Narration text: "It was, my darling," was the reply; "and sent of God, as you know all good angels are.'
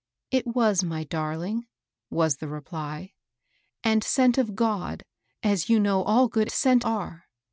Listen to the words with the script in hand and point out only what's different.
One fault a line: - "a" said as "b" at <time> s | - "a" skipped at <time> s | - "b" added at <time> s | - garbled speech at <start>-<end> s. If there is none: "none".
- "angels" said as "sent" at 6.5 s